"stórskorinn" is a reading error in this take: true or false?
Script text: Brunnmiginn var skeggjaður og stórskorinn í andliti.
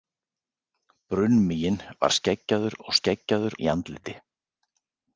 true